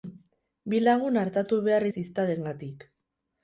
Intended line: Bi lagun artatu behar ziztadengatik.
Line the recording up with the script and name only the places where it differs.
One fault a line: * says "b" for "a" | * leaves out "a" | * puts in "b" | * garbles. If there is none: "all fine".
all fine